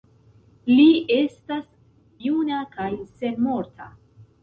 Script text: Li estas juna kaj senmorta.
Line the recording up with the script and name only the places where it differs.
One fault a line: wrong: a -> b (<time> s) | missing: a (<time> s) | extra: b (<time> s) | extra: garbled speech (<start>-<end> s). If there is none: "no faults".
no faults